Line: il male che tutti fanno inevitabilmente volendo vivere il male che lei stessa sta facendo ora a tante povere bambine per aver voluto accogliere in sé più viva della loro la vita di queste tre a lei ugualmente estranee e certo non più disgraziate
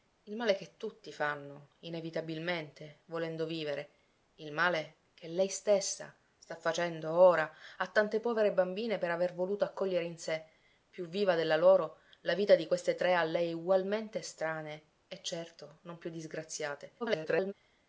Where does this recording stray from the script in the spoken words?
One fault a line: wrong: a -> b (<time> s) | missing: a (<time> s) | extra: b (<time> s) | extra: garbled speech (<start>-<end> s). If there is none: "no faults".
extra: garbled speech (17.0-17.5 s)